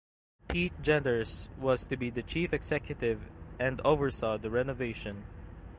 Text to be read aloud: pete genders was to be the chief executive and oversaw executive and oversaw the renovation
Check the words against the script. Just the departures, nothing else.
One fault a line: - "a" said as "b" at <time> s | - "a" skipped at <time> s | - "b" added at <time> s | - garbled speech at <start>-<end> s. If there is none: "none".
- "executive and oversaw" skipped at 4.4 s